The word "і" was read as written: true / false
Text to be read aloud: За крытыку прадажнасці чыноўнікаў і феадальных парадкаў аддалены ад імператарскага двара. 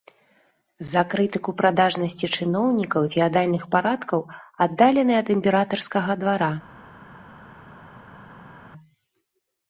true